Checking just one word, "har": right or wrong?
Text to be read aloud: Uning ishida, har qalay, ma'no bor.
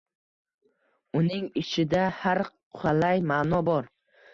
right